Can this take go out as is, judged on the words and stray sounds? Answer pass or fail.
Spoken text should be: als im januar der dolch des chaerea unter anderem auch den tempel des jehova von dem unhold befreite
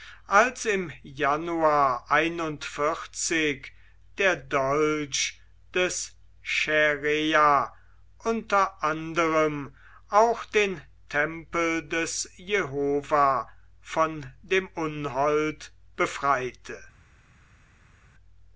pass